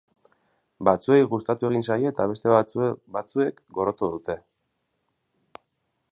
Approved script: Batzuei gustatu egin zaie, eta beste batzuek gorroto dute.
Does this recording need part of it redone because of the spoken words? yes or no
no